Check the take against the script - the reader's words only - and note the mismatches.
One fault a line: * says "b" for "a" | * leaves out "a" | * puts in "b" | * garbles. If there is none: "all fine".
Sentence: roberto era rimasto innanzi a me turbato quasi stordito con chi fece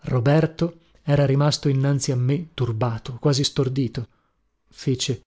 * leaves out "con chi"